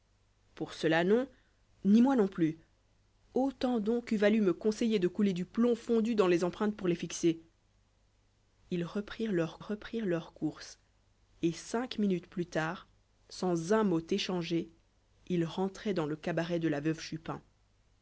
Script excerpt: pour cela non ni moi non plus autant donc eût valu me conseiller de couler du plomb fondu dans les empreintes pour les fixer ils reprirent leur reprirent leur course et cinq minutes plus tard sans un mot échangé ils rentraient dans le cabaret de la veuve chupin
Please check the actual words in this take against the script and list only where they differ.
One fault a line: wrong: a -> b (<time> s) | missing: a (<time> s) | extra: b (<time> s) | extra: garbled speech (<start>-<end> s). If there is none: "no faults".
no faults